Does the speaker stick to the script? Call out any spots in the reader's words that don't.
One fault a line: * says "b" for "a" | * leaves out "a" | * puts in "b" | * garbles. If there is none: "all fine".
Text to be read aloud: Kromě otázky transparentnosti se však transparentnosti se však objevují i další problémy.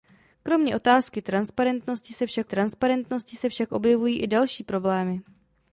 all fine